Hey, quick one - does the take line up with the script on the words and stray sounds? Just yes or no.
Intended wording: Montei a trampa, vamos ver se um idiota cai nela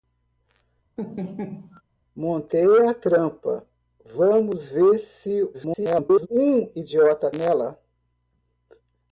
no